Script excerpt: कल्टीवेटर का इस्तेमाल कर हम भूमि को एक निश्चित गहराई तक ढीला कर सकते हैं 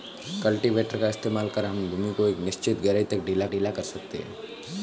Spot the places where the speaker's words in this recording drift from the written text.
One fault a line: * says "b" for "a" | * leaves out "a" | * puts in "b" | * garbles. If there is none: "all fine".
* puts in "ढीला"